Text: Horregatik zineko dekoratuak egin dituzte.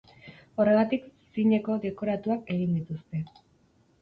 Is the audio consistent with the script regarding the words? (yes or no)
yes